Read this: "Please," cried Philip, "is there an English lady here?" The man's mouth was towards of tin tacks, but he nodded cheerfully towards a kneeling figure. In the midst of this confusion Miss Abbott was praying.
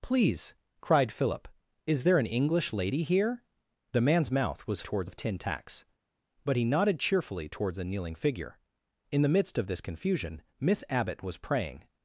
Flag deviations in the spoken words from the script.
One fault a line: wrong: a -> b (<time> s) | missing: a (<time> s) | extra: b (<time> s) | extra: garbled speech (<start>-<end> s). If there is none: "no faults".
no faults